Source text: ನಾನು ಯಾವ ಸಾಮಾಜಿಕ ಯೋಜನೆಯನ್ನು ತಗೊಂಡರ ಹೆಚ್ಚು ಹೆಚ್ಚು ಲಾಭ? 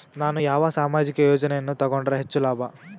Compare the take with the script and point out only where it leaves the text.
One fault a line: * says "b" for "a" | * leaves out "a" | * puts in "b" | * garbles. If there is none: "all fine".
* leaves out "ಹೆಚ್ಚು"